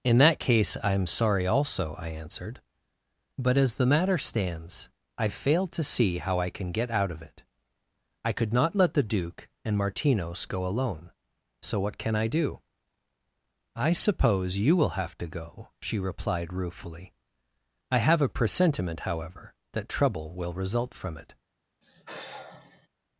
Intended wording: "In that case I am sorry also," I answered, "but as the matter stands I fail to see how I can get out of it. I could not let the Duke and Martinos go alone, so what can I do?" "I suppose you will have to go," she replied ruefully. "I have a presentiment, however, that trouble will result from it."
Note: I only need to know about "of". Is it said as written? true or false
true